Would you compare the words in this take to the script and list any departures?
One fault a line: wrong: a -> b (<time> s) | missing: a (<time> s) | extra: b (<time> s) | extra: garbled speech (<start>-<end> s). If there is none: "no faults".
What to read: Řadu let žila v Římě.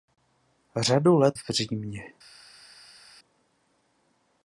missing: žila (1.4 s)